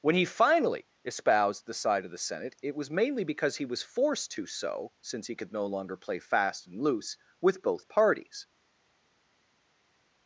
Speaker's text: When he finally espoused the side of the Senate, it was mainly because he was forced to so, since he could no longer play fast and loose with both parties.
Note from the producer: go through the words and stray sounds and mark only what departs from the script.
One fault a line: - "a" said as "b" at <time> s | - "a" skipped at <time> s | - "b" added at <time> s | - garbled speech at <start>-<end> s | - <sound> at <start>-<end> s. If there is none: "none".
none